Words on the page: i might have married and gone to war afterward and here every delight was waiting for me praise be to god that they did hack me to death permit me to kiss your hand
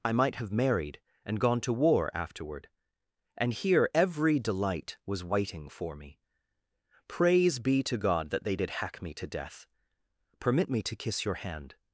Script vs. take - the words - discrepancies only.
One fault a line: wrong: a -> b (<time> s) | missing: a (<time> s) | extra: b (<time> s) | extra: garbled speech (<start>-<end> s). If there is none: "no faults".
no faults